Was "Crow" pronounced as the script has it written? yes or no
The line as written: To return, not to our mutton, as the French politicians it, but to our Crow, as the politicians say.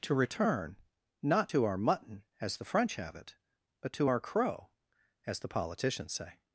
yes